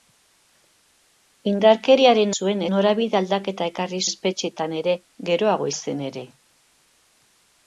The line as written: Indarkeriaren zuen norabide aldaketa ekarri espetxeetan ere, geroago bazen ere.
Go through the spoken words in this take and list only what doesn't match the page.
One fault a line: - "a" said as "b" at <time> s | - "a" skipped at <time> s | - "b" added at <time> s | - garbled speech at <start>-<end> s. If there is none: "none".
none